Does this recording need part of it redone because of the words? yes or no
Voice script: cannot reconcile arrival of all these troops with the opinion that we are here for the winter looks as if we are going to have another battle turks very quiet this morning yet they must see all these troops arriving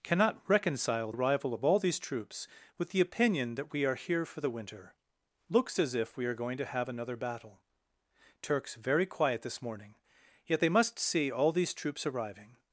no